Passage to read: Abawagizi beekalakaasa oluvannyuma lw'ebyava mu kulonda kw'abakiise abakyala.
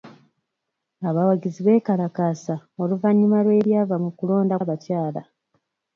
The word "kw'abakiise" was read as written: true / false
false